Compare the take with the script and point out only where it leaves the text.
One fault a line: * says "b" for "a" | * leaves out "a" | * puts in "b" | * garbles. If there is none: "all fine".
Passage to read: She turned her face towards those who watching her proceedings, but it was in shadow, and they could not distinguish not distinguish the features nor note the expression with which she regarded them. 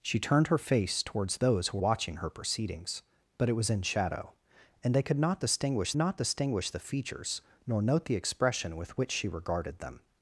all fine